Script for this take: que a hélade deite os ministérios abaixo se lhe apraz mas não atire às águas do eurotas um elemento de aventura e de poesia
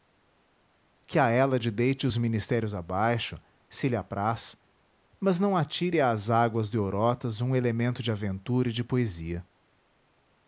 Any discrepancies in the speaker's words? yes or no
no